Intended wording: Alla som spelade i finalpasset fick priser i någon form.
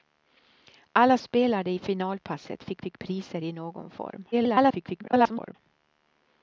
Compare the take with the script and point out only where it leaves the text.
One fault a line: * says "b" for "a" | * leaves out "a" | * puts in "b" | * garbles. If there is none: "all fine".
* leaves out "som"
* puts in "fick"
* garbles